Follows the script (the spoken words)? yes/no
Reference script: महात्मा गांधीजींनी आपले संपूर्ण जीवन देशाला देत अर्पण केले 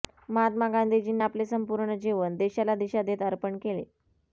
no